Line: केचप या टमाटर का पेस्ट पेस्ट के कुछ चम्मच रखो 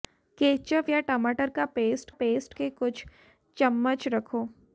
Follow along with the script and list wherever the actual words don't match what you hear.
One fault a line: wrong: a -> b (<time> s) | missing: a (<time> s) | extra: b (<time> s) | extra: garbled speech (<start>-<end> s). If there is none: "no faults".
no faults